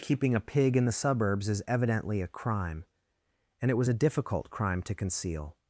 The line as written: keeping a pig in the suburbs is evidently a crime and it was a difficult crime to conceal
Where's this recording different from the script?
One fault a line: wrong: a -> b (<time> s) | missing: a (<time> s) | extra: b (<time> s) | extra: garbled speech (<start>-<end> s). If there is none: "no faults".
no faults